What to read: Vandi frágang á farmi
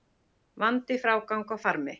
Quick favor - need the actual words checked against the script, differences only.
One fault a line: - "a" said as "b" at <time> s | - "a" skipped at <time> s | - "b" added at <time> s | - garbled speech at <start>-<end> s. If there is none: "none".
none